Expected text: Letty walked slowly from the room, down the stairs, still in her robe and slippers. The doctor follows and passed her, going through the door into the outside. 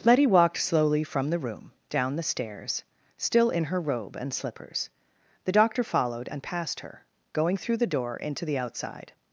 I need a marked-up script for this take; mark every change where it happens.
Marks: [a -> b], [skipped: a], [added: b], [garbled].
Letty walked slowly from the room, down the stairs, still in her robe and slippers. The doctor [follows -> followed] and passed her, going through the door into the outside.